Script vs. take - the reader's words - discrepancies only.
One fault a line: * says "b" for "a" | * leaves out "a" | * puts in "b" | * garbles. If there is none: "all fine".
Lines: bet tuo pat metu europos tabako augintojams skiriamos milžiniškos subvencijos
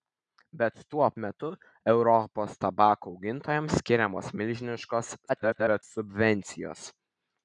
* leaves out "pat"
* garbles